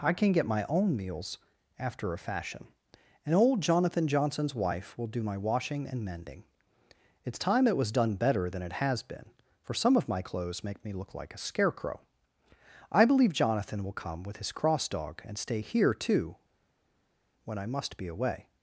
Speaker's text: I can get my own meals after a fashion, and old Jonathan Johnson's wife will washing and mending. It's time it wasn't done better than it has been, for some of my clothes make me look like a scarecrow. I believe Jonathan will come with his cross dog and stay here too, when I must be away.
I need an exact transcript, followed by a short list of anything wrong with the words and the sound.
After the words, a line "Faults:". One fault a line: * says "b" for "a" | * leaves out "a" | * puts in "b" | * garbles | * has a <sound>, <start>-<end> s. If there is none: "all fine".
I can get my own meals after a fashion, and old Jonathan Johnson's wife will do my washing and mending. It's time it was done better than it has been, for some of my clothes make me look like a scarecrow. I believe Jonathan will come with his cross dog and stay here too, when I must be away.
Faults:
* puts in "do my"
* says "was" for "wasn't"